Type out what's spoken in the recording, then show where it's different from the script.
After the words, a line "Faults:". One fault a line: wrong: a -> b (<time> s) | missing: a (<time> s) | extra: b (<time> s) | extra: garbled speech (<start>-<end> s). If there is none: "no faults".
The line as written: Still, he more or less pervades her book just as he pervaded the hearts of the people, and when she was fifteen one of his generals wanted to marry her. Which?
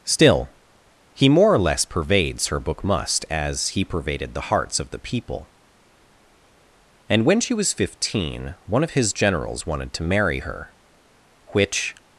Still, he more or less pervades her book must as he pervaded the hearts of the people, and when she was fifteen one of his generals wanted to marry her. Which?
Faults:
wrong: just -> must (2.8 s)